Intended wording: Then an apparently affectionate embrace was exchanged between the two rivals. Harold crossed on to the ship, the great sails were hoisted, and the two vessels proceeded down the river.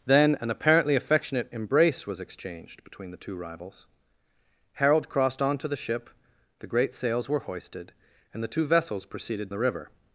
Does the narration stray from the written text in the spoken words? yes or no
yes